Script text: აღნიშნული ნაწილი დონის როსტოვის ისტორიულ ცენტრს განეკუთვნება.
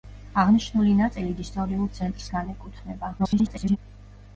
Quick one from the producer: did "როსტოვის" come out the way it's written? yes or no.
no